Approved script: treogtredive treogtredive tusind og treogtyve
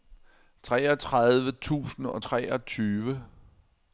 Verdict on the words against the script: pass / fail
fail